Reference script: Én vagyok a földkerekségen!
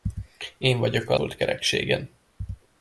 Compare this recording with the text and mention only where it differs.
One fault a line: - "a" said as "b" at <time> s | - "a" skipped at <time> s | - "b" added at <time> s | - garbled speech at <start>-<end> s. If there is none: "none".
none